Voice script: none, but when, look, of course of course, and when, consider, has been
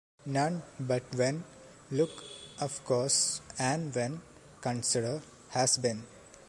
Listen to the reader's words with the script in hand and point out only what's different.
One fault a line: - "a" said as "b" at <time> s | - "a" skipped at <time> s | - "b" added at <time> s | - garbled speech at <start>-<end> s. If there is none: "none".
- "of course" skipped at 3.4 s